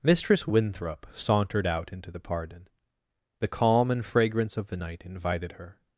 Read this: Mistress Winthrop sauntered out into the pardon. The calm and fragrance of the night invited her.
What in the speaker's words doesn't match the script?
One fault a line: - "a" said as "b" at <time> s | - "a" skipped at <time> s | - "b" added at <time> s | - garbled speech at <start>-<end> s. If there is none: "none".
none